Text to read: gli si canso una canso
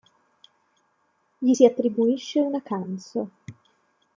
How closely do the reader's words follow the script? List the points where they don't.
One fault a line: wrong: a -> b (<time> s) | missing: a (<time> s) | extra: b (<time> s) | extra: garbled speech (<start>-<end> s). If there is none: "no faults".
wrong: canso -> attribuisce (1.6 s)